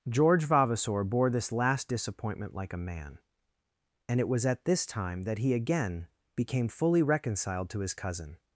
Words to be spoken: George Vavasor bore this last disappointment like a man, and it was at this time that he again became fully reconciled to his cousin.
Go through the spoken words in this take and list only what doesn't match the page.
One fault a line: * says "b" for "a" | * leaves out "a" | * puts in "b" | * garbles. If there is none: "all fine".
all fine